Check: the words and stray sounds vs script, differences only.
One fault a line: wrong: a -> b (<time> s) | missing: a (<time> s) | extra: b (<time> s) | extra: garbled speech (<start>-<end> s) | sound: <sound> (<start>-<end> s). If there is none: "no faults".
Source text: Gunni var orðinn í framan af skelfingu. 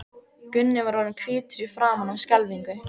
extra: hvítur (1.2 s)